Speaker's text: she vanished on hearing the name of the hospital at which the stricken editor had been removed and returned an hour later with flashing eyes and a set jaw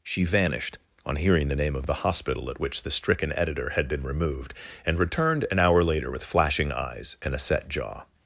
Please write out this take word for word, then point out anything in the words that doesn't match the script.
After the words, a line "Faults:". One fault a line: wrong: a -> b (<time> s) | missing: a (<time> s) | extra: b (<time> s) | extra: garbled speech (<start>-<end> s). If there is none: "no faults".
she vanished on hearing the name of the hospital at which the stricken editor had been removed and returned an hour later with flashing eyes and a set jaw
Faults:
no faults